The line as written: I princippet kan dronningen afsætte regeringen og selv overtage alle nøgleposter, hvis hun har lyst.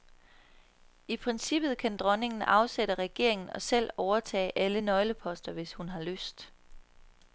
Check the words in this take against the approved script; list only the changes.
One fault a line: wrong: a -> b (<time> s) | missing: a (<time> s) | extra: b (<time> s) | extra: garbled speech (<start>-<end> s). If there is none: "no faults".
no faults